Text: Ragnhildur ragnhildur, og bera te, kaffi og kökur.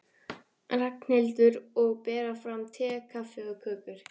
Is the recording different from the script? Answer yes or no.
yes